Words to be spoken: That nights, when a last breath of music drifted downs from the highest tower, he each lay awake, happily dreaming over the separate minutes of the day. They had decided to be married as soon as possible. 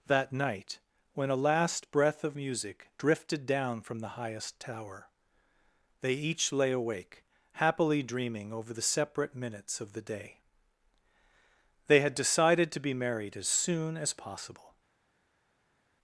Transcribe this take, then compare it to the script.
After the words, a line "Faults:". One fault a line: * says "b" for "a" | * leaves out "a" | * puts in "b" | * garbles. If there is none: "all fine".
That night, when a last breath of music drifted down from the highest tower, they each lay awake, happily dreaming over the separate minutes of the day. They had decided to be married as soon as possible.
Faults:
* says "night" for "nights"
* says "down" for "downs"
* says "they" for "he"